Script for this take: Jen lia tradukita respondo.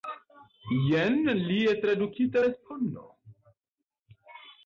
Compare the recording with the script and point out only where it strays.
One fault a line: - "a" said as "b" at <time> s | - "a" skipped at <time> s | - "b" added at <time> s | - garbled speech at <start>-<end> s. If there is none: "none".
none